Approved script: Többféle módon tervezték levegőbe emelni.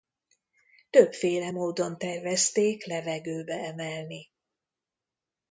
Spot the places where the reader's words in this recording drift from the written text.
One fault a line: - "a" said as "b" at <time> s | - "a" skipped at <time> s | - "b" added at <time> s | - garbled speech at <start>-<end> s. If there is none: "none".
none